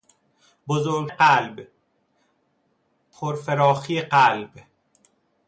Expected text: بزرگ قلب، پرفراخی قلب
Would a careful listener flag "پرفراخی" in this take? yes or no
no